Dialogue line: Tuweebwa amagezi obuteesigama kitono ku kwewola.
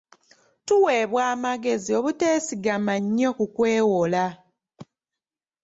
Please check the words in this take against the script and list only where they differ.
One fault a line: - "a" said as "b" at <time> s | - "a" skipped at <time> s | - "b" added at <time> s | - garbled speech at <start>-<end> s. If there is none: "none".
- "kitono" said as "nnyo" at 3.0 s